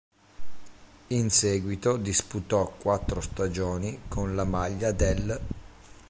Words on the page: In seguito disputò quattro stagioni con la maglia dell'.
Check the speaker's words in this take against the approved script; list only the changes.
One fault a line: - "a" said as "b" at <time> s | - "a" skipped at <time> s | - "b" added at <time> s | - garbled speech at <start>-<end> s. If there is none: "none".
none